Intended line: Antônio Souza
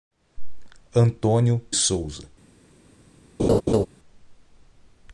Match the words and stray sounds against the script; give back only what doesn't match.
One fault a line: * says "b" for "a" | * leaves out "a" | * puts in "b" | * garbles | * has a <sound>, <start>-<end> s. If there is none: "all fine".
* has a laugh, 3.4-3.9 s